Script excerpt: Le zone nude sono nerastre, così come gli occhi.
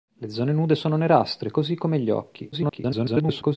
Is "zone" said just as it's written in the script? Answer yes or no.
yes